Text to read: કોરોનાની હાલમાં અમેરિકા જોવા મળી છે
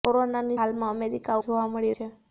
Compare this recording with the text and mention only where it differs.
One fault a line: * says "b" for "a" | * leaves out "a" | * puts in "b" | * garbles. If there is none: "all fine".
all fine